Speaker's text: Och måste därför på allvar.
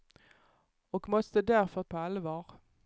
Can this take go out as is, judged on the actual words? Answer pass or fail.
pass